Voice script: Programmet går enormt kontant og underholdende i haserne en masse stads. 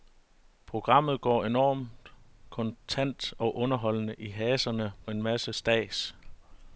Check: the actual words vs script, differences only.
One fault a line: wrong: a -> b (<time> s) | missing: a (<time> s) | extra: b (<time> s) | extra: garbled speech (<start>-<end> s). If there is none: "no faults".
no faults